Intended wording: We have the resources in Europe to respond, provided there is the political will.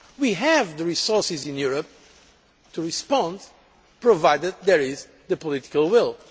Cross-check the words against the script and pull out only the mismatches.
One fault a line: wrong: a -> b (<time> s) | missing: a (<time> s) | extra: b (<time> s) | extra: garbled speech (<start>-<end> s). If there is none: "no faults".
no faults